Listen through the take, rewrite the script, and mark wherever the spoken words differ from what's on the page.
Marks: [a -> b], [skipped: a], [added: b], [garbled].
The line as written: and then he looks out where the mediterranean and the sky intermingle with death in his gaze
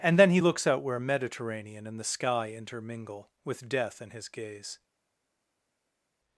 and then he looks out where [skipped: the] mediterranean and the sky intermingle with death in his gaze